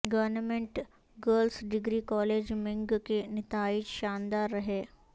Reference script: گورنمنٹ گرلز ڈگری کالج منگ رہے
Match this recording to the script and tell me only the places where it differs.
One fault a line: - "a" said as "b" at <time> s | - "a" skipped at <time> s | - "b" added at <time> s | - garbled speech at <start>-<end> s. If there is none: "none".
- "کے نتائج شاندار" added at 3.0 s